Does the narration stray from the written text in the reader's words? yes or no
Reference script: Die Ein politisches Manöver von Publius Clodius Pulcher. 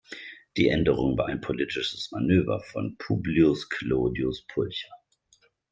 yes